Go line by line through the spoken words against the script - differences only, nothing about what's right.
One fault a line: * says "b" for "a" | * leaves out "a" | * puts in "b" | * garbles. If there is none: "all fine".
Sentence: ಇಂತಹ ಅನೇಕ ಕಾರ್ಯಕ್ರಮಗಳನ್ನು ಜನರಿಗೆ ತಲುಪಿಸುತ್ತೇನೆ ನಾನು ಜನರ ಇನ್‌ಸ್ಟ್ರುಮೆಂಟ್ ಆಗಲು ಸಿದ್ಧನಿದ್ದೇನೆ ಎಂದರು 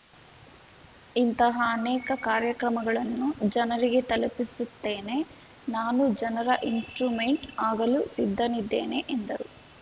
all fine